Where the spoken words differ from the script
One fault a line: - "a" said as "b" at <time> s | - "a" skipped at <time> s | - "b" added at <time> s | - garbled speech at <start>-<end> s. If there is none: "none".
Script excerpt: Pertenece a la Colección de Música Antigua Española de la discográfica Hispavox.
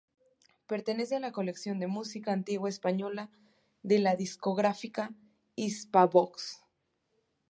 none